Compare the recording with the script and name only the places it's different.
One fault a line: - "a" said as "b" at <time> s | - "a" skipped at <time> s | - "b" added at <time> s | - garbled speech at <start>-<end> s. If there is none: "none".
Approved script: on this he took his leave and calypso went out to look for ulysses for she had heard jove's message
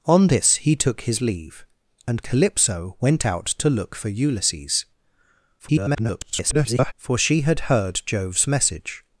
- garbled speech at 5.6-6.9 s